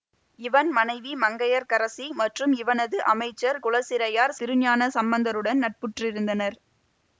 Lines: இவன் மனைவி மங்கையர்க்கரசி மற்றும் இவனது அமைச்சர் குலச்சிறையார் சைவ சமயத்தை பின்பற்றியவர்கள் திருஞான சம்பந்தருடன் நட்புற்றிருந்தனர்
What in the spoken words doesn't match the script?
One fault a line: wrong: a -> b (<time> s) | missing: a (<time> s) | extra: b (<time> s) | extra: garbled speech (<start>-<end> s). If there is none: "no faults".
missing: சைவ சமயத்தை பின்பற்றியவர்கள் (4.4 s)